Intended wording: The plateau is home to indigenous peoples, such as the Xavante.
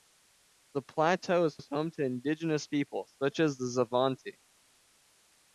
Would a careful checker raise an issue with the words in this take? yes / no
yes